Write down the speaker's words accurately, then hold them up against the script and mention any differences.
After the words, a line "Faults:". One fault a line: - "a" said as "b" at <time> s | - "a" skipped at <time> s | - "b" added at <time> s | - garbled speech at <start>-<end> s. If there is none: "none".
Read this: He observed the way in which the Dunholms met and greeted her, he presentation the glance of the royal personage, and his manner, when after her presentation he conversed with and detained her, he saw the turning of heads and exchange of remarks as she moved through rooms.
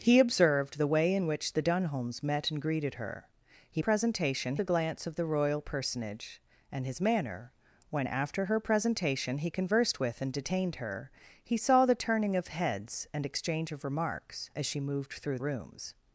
He observed the way in which the Dunholms met and greeted her, he presentation the glance of the royal personage, and his manner, when after her presentation he conversed with and detained her, he saw the turning of heads and exchange of remarks as she moved through rooms.
Faults:
none